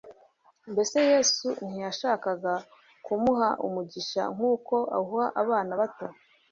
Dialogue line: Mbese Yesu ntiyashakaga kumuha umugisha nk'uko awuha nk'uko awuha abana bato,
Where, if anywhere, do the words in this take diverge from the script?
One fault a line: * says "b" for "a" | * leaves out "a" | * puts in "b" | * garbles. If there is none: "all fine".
* leaves out "nk'uko awuha"